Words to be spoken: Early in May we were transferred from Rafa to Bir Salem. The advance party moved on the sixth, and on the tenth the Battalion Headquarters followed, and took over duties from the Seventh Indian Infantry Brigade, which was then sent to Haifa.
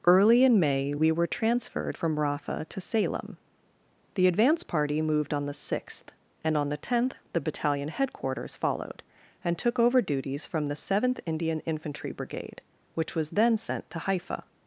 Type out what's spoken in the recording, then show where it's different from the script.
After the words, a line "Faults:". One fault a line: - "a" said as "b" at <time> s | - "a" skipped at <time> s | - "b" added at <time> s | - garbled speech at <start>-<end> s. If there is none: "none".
Early in May we were transferred from Rafa to Salem. The advance party moved on the sixth, and on the tenth the Battalion Headquarters followed, and took over duties from the Seventh Indian Infantry Brigade, which was then sent to Haifa.
Faults:
- "Bir" skipped at 2.8 s